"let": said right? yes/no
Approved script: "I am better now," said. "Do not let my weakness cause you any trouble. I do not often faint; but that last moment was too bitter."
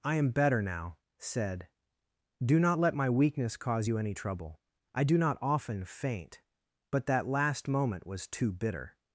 yes